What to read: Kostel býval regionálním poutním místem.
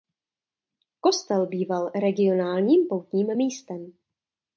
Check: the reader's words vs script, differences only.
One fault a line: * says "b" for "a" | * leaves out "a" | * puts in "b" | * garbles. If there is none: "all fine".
all fine